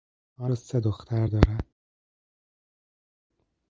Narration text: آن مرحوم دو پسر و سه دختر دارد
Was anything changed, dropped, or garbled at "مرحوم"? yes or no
yes